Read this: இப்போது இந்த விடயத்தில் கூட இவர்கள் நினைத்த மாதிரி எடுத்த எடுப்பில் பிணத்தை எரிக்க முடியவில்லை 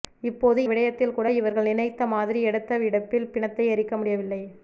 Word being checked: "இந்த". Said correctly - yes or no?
no